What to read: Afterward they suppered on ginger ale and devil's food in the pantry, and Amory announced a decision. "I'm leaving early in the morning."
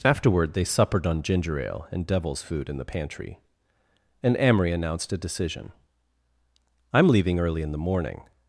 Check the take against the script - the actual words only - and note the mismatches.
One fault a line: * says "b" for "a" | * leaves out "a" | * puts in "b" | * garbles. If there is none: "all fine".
all fine